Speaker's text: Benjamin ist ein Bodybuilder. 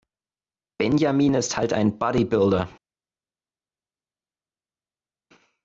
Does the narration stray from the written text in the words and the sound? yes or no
yes